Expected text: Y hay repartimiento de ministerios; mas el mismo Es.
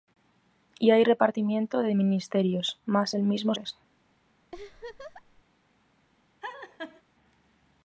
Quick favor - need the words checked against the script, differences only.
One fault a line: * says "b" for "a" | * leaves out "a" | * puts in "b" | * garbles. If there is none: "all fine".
all fine